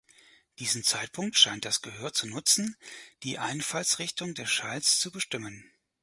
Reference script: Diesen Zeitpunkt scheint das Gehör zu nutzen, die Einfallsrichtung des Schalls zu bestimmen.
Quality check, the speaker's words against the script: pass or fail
pass